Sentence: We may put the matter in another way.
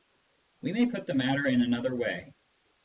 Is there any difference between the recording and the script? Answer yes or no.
no